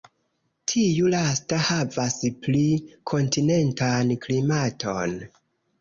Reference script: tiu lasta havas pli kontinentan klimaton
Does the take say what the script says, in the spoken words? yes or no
yes